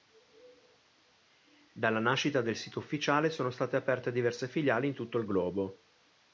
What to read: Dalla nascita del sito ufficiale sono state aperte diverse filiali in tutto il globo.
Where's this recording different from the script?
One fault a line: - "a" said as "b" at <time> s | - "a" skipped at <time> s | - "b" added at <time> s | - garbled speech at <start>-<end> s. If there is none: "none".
none